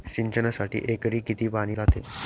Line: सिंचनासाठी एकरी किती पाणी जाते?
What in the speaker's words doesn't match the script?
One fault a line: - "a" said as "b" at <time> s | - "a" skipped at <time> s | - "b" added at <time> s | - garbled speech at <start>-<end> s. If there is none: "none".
none